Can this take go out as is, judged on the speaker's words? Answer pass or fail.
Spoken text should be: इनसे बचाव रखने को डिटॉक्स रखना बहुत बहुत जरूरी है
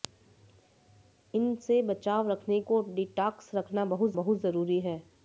pass